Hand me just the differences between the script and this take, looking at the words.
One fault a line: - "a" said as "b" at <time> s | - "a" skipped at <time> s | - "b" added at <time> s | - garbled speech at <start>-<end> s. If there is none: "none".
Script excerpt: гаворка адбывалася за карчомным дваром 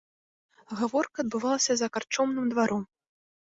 none